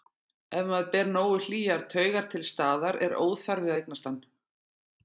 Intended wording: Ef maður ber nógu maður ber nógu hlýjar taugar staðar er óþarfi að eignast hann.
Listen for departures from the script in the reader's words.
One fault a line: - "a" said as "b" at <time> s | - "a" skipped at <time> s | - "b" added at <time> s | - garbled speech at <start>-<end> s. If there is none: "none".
- "maður ber nógu" skipped at 1.4 s
- "til" added at 2.3 s